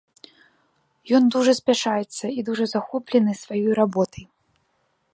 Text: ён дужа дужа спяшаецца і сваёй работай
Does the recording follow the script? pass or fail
fail